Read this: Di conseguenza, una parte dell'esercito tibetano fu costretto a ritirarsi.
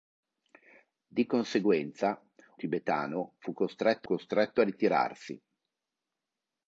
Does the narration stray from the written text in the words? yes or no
yes